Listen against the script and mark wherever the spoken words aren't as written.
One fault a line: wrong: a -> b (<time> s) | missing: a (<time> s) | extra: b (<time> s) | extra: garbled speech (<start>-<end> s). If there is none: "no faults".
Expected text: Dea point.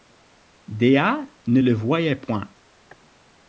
extra: ne le voyait (1.4 s)